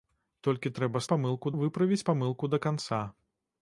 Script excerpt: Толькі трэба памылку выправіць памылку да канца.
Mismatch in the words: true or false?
false